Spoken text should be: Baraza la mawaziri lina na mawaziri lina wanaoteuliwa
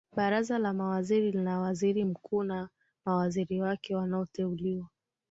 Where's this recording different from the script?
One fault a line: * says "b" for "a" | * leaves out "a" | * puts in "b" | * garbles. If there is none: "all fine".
* puts in "waziri mkuu"
* says "wake" for "lina"